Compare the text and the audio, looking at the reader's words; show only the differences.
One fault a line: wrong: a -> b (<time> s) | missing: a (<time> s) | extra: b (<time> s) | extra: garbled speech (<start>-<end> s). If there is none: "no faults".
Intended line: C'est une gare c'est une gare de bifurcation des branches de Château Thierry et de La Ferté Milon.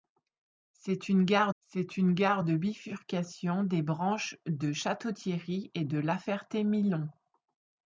no faults